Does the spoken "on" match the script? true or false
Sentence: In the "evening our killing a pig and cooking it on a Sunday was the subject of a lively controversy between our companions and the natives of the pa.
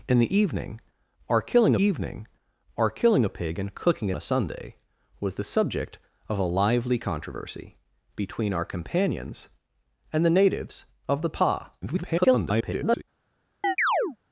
false